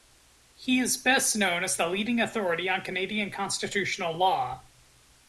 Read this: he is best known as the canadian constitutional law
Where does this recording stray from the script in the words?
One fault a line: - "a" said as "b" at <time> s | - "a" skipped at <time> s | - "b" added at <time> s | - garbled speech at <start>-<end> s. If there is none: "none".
- "leading authority on" added at 1.9 s